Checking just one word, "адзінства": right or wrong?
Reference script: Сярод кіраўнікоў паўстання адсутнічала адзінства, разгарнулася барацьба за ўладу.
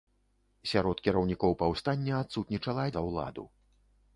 wrong